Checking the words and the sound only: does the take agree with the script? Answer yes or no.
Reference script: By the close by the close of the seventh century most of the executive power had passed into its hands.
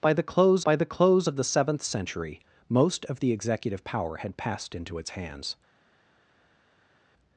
yes